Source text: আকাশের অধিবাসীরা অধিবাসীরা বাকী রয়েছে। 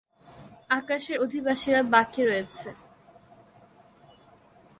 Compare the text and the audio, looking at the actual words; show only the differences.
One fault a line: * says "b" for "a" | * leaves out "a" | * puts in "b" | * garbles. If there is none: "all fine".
* leaves out "অধিবাসীরা"